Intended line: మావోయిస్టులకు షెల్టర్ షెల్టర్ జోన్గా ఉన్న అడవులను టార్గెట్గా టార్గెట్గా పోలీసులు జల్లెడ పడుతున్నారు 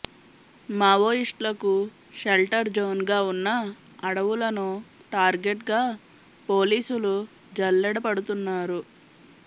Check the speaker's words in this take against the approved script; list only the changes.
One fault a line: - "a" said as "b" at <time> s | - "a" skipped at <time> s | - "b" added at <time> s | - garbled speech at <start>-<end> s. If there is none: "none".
- "షెల్టర్" skipped at 2.7 s
- "టార్గెట్గా" skipped at 5.8 s